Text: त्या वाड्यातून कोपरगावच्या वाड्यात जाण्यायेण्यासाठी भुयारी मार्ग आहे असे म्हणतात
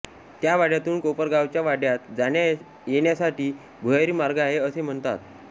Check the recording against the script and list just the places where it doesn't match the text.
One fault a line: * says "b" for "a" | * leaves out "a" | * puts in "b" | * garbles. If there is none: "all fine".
all fine